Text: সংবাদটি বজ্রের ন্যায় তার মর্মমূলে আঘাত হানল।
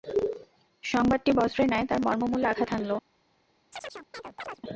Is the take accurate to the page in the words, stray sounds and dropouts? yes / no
no